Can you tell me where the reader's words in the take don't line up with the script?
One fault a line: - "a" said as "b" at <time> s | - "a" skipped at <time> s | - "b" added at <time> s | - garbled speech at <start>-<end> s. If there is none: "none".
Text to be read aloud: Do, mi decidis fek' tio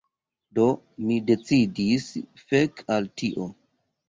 - "al" added at 3.0 s